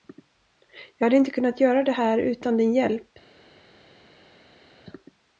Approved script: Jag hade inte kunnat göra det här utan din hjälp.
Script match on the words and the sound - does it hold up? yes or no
yes